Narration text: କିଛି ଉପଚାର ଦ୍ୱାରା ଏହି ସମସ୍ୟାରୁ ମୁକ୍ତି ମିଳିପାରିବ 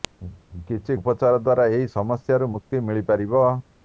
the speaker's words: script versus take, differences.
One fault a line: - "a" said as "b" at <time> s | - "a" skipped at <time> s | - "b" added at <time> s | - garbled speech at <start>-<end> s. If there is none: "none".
none